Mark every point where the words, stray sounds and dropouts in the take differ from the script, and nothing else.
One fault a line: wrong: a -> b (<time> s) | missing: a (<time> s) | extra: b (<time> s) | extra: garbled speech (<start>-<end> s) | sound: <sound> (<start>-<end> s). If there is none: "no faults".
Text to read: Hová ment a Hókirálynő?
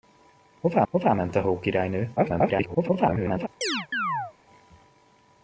extra: hová (0.9 s)
extra: garbled speech (2.2-3.5 s)
sound: chirp (3.6-4.3 s)